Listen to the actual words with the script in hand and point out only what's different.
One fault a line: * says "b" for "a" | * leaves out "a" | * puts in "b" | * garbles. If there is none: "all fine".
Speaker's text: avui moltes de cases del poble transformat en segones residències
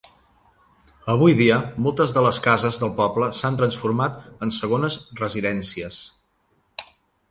* puts in "dia"
* puts in "les"
* puts in "s'han"